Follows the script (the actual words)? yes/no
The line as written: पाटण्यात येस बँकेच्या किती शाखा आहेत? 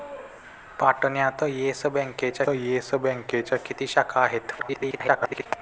no